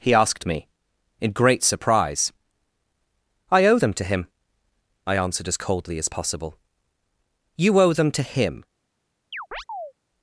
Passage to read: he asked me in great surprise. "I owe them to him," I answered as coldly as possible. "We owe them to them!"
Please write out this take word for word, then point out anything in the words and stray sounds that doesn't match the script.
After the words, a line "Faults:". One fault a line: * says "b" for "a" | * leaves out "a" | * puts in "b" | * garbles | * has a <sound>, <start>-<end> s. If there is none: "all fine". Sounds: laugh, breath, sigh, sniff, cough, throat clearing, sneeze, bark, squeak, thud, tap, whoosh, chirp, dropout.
he asked me in great surprise. "I owe them to him," I answered as coldly as possible. "You owe them to him!"
Faults:
* says "You" for "We"
* says "him" for "them"
* has a chirp, 9.3-9.9 s